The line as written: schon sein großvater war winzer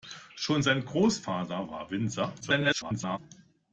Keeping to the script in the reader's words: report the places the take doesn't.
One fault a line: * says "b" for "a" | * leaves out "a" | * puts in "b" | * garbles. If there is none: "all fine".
* garbles